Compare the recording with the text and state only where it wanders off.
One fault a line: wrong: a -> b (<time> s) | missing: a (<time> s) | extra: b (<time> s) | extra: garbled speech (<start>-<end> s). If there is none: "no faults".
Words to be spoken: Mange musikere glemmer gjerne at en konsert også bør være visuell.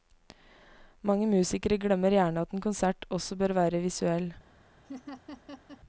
no faults